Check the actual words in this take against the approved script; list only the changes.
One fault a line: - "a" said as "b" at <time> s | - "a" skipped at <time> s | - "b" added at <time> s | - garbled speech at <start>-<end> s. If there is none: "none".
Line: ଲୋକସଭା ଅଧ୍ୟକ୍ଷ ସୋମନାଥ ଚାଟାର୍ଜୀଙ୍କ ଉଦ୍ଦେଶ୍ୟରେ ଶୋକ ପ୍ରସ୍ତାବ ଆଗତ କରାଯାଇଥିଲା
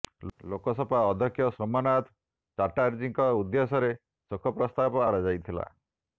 - "ଆଗତ" skipped at 5.1 s